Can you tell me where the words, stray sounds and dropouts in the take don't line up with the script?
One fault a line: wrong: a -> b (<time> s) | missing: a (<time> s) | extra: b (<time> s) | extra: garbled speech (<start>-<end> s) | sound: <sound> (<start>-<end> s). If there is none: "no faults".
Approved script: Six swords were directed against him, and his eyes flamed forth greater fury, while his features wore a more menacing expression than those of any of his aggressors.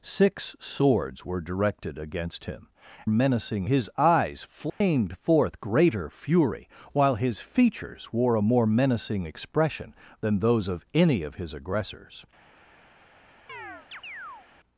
wrong: and -> menacing (3.1 s)
sound: dropout (4.7-4.8 s)
sound: chirp (13.5-14.5 s)